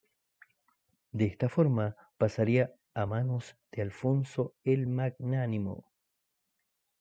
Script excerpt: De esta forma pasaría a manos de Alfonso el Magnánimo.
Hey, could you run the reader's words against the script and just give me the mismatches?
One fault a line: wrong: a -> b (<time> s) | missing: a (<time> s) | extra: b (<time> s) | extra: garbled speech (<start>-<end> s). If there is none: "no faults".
no faults